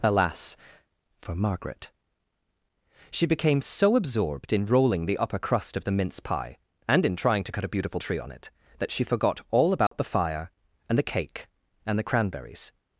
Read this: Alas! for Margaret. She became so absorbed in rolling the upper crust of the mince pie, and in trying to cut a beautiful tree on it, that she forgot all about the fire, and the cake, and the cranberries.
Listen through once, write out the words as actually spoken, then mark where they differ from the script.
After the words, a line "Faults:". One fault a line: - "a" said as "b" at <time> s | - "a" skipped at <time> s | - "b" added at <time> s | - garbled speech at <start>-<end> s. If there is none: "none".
Alas! for Margaret. She became so absorbed in rolling the upper crust of the mince pie, and in trying to cut a beautiful tree on it, that she forgot all about the fire, and the cake, and the cranberries.
Faults:
none